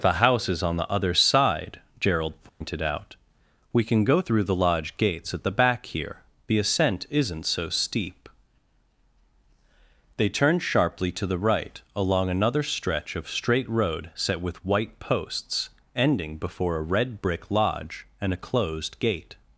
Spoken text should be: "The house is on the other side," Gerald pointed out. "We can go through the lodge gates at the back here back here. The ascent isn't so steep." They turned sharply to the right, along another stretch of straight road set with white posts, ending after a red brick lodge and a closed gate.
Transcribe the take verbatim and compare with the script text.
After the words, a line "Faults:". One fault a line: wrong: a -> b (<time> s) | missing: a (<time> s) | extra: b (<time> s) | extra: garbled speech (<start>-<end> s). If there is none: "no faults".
"The house is on the other side," Gerald pointed out. "We can go through the lodge gates at the back here. The ascent isn't so steep." They turned sharply to the right, along another stretch of straight road set with white posts, ending before a red brick lodge and a closed gate.
Faults:
missing: back here (6.2 s)
wrong: after -> before (16.4 s)